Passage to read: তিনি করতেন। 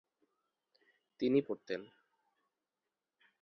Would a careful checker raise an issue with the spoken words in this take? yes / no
no